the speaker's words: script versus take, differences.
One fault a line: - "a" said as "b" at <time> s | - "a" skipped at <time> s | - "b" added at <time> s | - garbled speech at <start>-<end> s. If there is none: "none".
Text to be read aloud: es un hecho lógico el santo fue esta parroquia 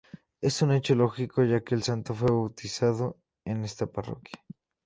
- "ya que" added at 1.4 s
- "bautizado en" added at 2.3 s